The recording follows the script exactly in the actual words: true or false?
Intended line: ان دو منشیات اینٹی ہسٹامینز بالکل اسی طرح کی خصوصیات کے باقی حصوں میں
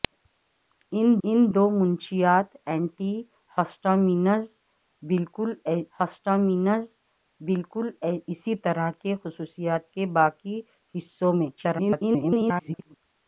false